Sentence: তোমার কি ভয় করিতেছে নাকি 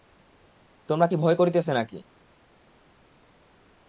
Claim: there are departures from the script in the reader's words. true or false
false